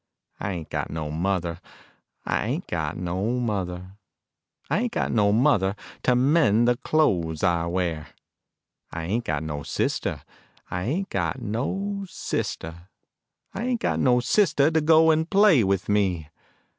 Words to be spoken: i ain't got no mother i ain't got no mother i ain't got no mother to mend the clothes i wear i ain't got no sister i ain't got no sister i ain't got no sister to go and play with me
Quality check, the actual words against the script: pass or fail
pass